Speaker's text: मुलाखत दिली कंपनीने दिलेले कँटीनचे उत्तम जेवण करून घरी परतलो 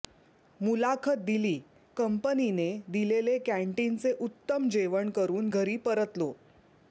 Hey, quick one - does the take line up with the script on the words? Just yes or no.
yes